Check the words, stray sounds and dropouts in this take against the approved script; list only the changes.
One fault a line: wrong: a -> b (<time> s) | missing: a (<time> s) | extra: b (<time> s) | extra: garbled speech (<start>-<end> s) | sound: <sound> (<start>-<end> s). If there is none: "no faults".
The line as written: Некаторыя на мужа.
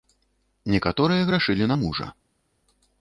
extra: грашылі (1.3 s)